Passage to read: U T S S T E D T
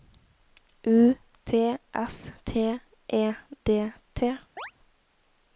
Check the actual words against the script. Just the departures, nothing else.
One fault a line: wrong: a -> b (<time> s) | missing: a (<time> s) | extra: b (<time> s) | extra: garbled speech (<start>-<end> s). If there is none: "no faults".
missing: S (2.3 s)